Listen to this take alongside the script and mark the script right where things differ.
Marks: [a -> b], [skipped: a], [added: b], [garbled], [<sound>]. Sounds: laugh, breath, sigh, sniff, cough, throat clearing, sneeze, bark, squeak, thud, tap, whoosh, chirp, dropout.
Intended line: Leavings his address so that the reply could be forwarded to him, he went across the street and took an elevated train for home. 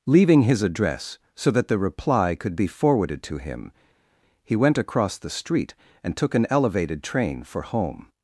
[Leavings -> Leaving] his address so that the reply could be forwarded to him, he went across the street and took an elevated train for home.